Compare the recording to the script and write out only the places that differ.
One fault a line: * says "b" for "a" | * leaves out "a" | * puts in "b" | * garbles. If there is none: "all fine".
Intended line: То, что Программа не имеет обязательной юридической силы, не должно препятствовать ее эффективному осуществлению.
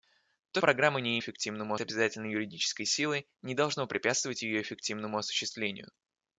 * leaves out "что"
* says "эффективному" for "имеет"